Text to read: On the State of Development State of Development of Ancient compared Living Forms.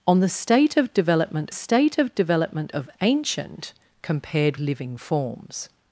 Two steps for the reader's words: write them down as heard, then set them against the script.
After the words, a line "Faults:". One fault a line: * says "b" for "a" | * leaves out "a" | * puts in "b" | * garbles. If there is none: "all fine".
On the State of Development State of Development of Ancient compared Living Forms.
Faults:
all fine